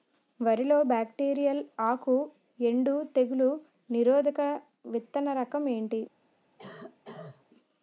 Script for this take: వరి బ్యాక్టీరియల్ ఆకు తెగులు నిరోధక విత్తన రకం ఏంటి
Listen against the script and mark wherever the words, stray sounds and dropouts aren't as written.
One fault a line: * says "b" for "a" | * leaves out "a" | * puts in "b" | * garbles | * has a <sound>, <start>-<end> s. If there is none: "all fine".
* puts in "లో"
* puts in "ఎండు"
* has a cough, 6.6-7.5 s